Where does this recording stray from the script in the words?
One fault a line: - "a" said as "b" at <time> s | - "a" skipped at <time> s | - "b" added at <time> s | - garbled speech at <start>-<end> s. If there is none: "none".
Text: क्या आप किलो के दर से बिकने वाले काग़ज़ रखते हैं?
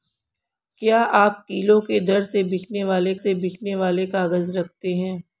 - "से बिकने वाले" added at 3.1 s